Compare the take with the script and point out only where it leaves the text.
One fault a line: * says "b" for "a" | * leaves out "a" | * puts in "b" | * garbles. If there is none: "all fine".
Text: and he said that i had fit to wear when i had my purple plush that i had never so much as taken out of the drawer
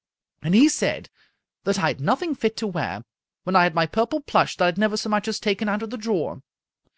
* puts in "nothing"